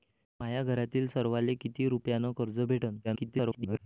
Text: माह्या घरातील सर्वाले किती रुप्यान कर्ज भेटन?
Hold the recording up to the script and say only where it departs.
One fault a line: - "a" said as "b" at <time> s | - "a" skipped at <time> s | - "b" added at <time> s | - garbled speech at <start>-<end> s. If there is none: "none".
- garbled speech at 3.0-3.8 s